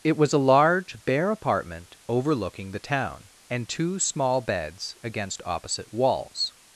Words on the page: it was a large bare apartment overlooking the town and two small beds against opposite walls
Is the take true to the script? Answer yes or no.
yes